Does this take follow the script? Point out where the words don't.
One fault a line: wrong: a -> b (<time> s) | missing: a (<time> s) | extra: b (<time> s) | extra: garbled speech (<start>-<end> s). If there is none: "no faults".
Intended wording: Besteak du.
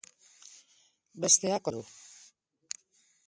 no faults